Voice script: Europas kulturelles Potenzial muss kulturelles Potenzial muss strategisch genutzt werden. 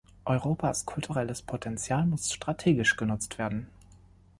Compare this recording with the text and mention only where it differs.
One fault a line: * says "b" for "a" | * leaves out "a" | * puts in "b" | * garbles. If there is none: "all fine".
* leaves out "kulturelles Potenzial muss"